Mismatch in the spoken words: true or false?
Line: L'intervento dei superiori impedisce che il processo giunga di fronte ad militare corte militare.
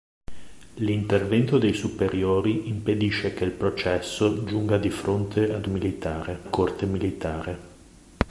false